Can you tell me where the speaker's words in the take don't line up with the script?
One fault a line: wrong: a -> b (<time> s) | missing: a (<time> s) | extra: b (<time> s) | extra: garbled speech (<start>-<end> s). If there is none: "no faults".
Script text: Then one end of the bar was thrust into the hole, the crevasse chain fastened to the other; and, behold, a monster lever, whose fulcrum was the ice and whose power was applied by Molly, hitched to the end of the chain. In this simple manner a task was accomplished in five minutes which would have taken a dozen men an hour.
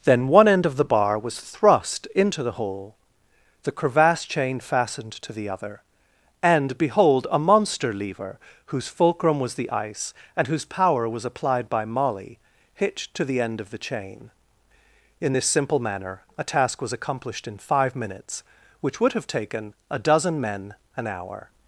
no faults